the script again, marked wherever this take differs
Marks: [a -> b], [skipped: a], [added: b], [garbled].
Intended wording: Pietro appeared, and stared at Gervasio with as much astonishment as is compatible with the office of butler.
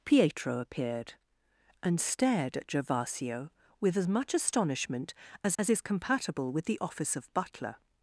Pietro appeared, and stared at Gervasio with as much astonishment as [added: as] is compatible with the office of butler.